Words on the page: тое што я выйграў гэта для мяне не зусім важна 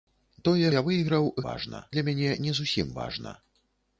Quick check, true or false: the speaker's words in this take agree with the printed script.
false